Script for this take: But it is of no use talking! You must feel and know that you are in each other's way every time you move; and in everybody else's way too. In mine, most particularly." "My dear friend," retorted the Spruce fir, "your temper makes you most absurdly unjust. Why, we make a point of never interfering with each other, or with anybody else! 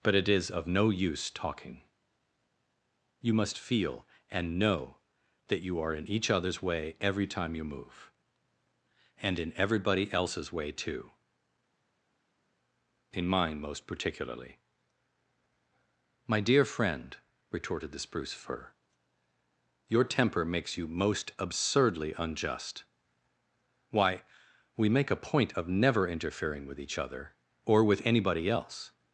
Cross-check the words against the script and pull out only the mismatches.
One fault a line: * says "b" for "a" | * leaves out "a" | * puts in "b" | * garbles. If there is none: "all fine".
all fine